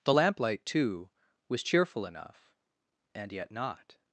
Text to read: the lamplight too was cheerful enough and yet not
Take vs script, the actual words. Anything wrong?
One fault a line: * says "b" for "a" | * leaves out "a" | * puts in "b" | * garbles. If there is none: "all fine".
all fine